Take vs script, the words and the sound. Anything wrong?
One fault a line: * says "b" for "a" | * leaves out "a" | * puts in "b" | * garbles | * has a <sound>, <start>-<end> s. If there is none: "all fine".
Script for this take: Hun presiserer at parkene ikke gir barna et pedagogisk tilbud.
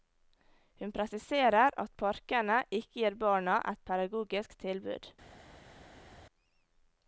all fine